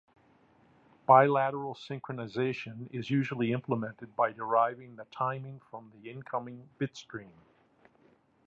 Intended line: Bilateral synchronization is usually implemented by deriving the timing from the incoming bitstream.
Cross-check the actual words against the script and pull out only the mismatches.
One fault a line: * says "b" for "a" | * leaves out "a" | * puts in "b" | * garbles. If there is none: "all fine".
all fine